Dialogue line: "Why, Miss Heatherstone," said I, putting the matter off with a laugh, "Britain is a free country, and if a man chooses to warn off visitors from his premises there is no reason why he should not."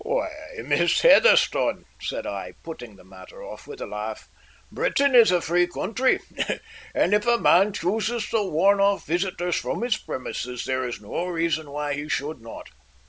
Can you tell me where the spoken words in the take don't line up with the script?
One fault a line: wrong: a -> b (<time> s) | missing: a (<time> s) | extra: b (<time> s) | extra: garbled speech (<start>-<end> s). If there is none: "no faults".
no faults